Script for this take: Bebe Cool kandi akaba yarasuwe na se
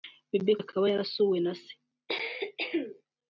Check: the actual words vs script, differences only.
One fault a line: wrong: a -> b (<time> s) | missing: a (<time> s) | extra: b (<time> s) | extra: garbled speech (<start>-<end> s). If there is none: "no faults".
missing: Cool kandi (0.5 s)